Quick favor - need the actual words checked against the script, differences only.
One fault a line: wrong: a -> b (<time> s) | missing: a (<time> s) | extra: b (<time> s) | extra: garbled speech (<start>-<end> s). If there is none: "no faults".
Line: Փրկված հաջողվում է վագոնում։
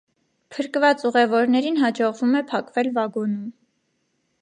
extra: ուղևորներին (1.1 s)
extra: փակվել (2.5 s)